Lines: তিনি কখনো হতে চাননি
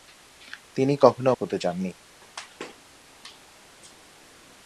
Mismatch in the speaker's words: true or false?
false